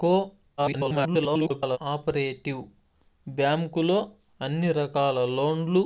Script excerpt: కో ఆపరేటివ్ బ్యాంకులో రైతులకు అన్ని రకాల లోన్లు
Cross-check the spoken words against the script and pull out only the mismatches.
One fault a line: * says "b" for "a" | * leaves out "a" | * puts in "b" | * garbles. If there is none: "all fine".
* garbles
* leaves out "రైతులకు"